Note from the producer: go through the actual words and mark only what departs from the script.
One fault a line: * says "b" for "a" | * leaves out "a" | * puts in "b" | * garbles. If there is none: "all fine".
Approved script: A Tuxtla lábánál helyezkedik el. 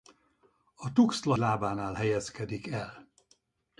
all fine